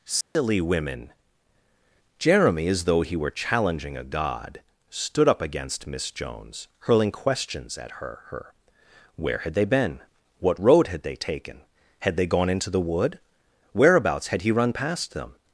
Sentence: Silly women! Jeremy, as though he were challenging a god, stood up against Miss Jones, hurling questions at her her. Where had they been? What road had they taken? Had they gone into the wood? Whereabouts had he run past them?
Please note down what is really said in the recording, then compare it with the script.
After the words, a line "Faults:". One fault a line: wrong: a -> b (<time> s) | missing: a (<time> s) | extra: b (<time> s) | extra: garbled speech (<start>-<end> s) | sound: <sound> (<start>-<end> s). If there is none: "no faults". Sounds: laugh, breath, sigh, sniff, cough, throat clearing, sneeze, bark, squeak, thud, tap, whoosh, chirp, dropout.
Silly women! Jeremy, as though he were challenging a god, stood up against Miss Jones, hurling questions at her her. Where had they been? What road had they taken? Had they gone into the wood? Whereabouts had he run past them?
Faults:
sound: dropout (0.2-0.4 s)